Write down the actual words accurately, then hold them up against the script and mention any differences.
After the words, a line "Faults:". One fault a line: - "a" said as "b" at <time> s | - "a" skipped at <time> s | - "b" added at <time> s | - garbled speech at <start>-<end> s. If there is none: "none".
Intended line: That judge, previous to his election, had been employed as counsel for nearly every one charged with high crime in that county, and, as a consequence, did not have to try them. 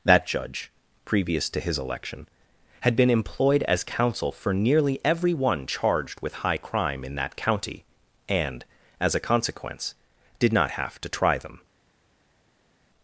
That judge, previous to his election, had been employed as counsel for nearly every one charged with high crime in that county, and, as a consequence, did not have to try them.
Faults:
none